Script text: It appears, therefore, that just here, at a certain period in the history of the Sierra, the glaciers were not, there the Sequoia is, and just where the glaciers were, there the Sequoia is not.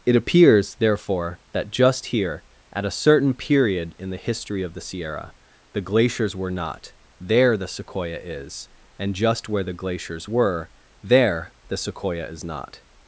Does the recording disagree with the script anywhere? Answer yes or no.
no